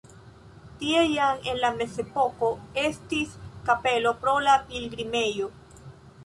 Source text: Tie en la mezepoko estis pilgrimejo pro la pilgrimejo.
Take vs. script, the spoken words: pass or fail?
fail